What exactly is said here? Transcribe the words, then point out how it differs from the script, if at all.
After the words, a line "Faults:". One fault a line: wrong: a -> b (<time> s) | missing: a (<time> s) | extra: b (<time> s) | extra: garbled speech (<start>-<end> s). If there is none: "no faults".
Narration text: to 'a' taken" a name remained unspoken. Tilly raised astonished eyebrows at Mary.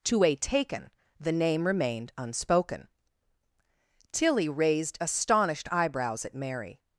to 'a' taken" the name remained unspoken. Tilly raised astonished eyebrows at Mary.
Faults:
wrong: a -> the (1.2 s)